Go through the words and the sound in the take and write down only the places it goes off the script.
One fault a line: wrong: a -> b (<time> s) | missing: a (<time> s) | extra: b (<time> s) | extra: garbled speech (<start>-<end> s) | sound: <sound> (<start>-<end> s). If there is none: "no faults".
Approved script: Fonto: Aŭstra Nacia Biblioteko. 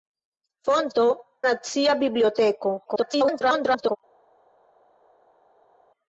missing: Aŭstra (1.1 s)
extra: garbled speech (2.8-4.0 s)